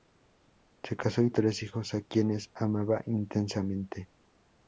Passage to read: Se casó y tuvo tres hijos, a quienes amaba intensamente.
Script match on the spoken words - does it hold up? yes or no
no